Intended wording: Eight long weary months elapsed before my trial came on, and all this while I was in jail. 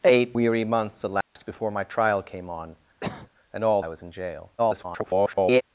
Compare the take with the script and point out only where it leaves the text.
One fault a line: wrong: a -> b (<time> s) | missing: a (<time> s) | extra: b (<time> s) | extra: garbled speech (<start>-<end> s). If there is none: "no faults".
missing: long (0.4 s)
missing: this while (3.8 s)
extra: garbled speech (4.6-5.6 s)